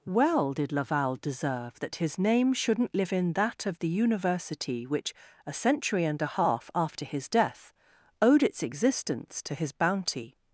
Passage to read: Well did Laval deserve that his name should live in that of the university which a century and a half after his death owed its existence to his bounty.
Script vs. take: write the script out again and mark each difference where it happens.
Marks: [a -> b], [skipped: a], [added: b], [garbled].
Well did Laval deserve that his name [should -> shouldn't] live in that of the university which a century and a half after his death owed its existence to his bounty.